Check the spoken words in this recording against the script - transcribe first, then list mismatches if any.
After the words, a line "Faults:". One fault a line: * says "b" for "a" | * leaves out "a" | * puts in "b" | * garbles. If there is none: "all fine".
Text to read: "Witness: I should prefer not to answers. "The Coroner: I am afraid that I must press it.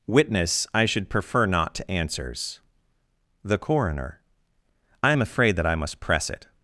"Witness: I should prefer not to answers. "The Coroner: I am afraid that I must press it.
Faults:
all fine